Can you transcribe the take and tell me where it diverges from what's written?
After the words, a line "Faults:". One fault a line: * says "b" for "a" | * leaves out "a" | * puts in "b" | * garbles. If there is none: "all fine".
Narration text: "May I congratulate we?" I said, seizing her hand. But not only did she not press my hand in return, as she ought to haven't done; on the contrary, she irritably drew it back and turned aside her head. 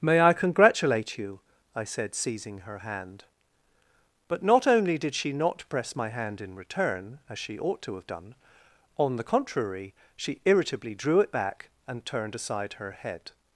"May I congratulate you?" I said, seizing her hand. But not only did she not press my hand in return, as she ought to have done; on the contrary, she irritably drew it back and turned aside her head.
Faults:
* says "you" for "we"
* says "have" for "haven't"